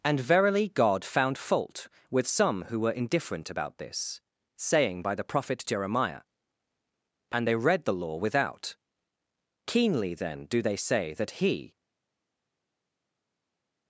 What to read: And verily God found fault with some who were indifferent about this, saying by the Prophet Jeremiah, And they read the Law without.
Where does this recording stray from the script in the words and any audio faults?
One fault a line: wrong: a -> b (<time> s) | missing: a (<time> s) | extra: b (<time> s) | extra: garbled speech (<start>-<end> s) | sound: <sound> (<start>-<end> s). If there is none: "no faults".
extra: Keenly then do they say that He (9.7 s)